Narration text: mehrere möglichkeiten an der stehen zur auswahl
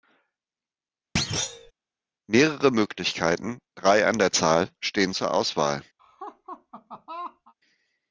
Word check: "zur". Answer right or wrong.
right